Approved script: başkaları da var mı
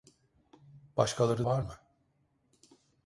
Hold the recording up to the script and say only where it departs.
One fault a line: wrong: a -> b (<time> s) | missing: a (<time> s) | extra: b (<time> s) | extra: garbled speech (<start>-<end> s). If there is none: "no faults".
missing: da (1.5 s)